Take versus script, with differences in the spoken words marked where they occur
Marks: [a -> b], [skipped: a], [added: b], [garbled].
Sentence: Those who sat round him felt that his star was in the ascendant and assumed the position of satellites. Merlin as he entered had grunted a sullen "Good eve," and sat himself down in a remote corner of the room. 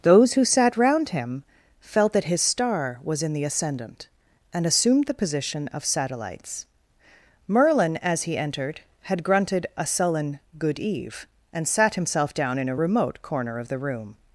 Those who sat round him felt that his star was in the ascendant and assumed the position of satellites. Merlin as he entered had grunted a sullen "Good eve," and sat himself down in a remote corner of the room.